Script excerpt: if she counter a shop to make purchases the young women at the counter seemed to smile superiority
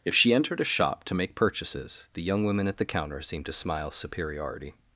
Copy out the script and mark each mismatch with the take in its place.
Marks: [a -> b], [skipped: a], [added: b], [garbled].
if she [counter -> entered] a shop to make purchases the young women at the counter seemed to smile superiority